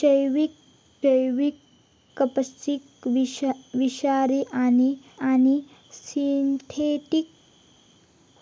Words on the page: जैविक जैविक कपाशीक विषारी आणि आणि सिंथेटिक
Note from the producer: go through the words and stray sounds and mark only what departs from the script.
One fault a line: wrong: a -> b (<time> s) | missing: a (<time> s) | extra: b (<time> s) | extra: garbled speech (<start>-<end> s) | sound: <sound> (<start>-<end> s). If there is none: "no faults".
no faults